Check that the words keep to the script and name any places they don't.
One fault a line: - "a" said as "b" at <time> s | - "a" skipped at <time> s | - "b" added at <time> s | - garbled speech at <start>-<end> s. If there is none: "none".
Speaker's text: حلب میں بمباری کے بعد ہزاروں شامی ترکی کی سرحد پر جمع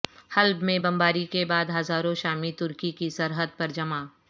none